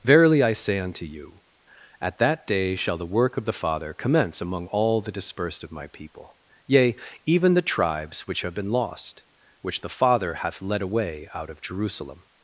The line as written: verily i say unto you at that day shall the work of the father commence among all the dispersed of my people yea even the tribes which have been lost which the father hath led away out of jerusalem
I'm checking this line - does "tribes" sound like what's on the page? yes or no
yes